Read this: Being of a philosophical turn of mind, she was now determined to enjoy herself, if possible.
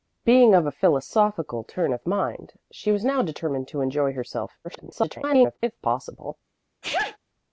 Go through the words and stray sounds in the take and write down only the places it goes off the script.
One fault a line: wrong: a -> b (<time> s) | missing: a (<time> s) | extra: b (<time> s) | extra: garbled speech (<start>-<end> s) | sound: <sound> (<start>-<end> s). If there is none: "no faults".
extra: garbled speech (4.6-5.6 s)
sound: sneeze (6.8-7.2 s)